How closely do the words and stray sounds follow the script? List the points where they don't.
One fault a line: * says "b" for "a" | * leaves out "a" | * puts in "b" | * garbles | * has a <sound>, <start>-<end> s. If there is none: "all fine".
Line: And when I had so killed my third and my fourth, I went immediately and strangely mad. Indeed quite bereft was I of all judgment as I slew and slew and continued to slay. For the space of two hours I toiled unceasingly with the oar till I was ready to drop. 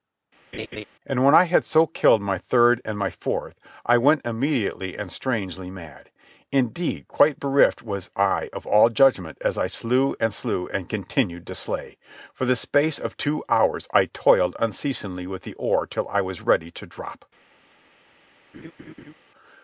* has a laugh, 0.5-0.9 s
* has a laugh, 18.5-19.1 s